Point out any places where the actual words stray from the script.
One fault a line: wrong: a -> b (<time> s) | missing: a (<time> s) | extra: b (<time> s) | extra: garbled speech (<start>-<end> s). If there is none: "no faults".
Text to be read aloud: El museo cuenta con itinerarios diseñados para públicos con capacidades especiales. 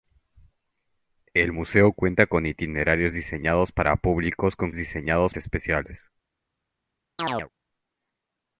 wrong: capacidades -> diseñados (4.7 s)